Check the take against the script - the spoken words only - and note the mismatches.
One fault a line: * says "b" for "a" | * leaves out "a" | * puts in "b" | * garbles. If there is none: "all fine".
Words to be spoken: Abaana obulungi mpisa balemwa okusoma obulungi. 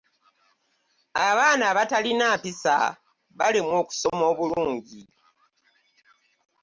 * says "abatalina" for "obulungi"